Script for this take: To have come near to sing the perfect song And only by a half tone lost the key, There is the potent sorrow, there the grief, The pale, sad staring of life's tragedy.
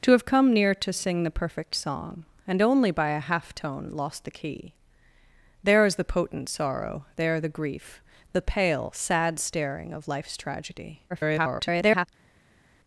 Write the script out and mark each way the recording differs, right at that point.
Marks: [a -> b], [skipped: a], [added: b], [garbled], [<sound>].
To have come near to sing the perfect song And only by a half tone lost the key, There is the potent sorrow, there the grief, The pale, sad staring of life's tragedy. [garbled]